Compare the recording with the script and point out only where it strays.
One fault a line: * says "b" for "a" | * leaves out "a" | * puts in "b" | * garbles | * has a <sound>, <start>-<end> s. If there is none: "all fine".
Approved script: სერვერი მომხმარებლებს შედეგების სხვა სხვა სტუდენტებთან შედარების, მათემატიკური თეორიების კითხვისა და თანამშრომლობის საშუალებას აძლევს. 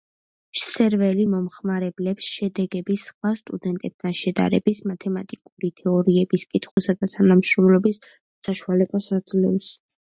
* leaves out "სხვა"
* has a dropout, 6.7-6.8 s